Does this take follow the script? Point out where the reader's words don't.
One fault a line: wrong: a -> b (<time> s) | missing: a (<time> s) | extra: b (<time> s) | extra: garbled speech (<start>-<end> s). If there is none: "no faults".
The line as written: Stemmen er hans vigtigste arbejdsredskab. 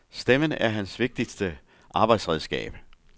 no faults